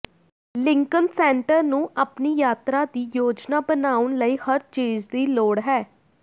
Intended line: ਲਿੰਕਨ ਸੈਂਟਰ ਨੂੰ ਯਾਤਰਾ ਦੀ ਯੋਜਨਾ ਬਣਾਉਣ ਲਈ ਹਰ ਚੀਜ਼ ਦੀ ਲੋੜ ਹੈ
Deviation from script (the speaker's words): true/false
true